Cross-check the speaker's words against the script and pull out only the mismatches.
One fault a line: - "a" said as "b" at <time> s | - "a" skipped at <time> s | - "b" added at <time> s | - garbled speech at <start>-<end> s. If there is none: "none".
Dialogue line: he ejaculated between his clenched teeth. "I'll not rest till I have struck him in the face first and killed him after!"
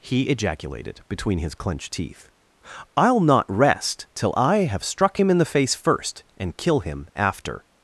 - "killed" said as "kill" at 6.6 s